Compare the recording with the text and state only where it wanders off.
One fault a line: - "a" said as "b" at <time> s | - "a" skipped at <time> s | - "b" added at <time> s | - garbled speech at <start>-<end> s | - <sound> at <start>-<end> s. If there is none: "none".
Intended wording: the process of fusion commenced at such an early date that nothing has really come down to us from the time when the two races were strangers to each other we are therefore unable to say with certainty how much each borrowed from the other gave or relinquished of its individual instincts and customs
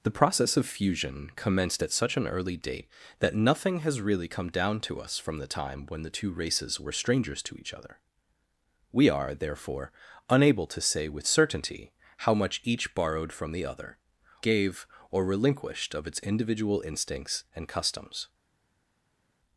none